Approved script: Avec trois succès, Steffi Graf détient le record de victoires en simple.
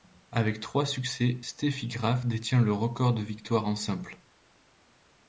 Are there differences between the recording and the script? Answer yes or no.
no